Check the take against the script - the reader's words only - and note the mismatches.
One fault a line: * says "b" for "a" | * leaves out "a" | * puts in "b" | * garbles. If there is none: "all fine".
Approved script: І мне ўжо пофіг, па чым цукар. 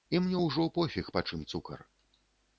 all fine